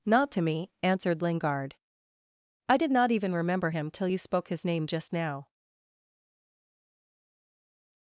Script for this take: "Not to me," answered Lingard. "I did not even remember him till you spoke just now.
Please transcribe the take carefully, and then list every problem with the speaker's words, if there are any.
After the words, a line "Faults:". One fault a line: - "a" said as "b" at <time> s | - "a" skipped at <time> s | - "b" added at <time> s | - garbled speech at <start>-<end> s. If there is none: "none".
"Not to me," answered Lingard. "I did not even remember him till you spoke his name just now.
Faults:
- "his name" added at 4.5 s